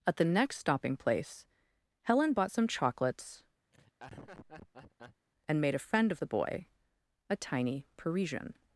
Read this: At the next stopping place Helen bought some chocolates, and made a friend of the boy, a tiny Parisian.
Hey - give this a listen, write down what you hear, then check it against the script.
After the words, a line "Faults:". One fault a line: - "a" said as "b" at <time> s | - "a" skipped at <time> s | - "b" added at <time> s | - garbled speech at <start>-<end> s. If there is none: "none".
At the next stopping place Helen bought some chocolates, and made a friend of the boy, a tiny Parisian.
Faults:
none